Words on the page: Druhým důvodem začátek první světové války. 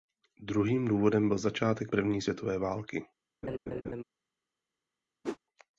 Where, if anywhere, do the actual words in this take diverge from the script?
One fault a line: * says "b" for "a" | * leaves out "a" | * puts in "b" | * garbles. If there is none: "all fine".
* puts in "byl"